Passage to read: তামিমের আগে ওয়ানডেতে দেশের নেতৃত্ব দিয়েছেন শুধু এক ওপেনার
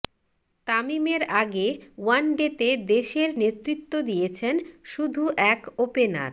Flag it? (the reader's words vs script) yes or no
no